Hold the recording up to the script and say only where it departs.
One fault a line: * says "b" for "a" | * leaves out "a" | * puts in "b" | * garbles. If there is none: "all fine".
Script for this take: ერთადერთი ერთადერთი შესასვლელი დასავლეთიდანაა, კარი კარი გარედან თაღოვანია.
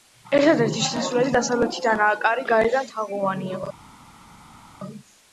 * leaves out "ერთადერთი"
* leaves out "კარი"